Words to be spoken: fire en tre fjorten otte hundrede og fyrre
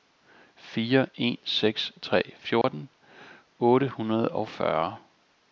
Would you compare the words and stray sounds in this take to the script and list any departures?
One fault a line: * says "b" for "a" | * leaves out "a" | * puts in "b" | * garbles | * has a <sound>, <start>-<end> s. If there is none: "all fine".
* puts in "seks"
* has a dropout, 2.6-2.6 s